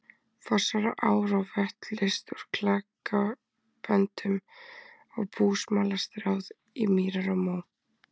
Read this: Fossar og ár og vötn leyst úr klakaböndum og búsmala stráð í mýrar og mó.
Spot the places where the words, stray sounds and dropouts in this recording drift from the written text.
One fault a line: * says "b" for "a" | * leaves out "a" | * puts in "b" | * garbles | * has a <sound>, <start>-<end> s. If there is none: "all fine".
all fine